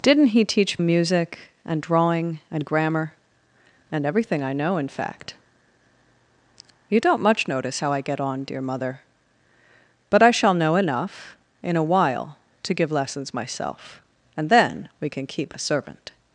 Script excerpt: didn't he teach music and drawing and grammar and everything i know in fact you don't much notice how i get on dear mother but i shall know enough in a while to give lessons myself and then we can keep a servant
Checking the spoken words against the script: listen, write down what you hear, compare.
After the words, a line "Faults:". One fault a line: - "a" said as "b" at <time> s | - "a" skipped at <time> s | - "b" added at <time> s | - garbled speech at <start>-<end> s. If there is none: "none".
didn't he teach music and drawing and grammar and everything i know in fact you don't much notice how i get on dear mother but i shall know enough in a while to give lessons myself and then we can keep a servant
Faults:
none